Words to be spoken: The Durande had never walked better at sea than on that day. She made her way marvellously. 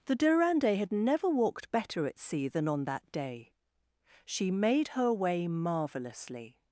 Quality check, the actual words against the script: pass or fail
pass